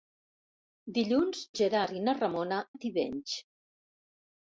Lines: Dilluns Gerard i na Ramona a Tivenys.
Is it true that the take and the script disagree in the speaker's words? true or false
false